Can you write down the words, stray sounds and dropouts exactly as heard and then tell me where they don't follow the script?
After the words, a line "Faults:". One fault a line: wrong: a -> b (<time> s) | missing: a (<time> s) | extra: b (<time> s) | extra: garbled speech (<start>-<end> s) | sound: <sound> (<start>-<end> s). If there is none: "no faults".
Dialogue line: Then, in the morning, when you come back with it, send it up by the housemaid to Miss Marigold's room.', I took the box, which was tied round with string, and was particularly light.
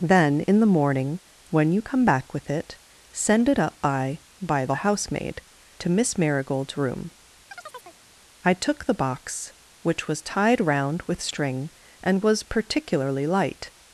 Then, in the morning, when you come back with it, send it up by by the housemaid to Miss Marigold's room.', I took the box, which was tied round with string, and was particularly light.
Faults:
extra: by (4.4 s)
sound: chirp (7.5-8.0 s)